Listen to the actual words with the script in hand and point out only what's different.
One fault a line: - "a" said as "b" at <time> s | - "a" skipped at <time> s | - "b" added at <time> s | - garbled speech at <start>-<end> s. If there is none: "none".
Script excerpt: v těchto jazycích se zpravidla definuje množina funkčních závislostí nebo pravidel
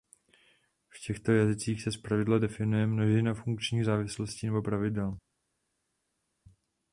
none